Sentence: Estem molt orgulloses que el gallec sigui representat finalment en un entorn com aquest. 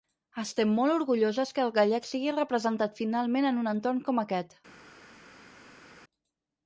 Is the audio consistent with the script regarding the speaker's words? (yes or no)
yes